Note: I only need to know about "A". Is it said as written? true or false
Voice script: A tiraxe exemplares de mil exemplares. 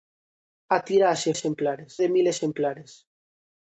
true